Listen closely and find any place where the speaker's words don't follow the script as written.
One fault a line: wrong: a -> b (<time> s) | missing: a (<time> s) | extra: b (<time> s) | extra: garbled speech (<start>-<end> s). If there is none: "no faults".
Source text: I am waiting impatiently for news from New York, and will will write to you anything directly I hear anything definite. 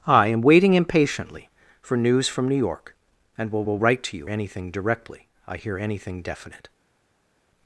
no faults